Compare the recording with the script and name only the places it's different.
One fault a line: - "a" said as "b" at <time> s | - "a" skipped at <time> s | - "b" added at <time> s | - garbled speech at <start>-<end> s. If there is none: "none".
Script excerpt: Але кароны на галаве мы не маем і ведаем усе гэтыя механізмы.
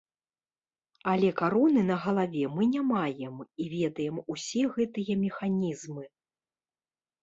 none